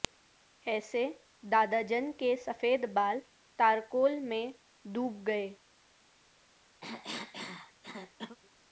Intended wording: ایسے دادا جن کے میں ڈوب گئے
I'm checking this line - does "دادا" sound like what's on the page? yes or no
yes